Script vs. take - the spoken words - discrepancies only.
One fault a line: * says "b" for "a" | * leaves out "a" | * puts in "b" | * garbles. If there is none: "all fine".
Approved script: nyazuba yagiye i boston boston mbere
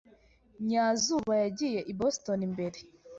* leaves out "boston"